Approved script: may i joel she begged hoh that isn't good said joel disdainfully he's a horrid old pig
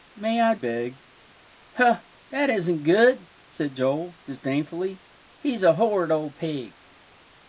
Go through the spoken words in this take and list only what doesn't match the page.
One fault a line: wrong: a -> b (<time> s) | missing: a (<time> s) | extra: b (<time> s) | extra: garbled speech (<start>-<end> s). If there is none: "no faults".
missing: joel she (0.6 s)